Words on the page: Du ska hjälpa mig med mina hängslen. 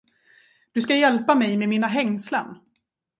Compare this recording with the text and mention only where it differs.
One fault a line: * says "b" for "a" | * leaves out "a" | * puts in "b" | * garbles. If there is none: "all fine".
all fine